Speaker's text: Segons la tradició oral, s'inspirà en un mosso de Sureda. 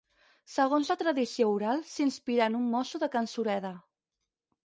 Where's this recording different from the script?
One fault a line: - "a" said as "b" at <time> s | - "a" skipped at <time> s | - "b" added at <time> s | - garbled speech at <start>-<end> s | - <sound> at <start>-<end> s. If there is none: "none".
- "can" added at 3.2 s